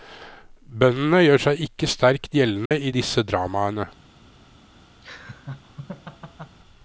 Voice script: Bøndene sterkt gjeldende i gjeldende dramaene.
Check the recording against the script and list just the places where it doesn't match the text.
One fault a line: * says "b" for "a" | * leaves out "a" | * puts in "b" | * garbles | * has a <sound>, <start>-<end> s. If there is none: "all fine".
* puts in "gjør seg ikke"
* has a dropout, 2.7-2.7 s
* says "disse" for "gjeldende"
* has a laugh, 5.0-6.6 s